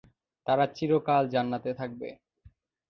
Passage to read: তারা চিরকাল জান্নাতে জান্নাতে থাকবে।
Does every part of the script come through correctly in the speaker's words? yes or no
no